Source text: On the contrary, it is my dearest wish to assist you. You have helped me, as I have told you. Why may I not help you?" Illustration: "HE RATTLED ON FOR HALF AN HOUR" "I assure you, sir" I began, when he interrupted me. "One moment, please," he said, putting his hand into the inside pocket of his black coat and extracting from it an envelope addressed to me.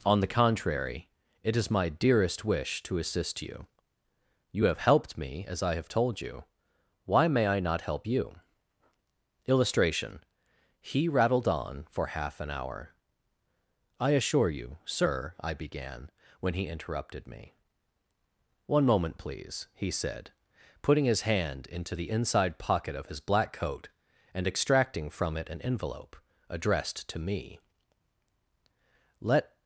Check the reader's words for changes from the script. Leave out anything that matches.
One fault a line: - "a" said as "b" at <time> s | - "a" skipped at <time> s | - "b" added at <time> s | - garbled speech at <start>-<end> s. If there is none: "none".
- "Let" added at 29.2 s